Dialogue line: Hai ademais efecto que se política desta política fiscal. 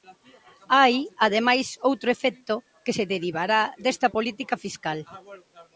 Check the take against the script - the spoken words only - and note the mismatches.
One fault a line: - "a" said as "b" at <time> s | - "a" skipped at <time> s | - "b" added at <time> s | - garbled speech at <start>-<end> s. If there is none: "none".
- "outro" added at 1.9 s
- "política" said as "derivará" at 3.1 s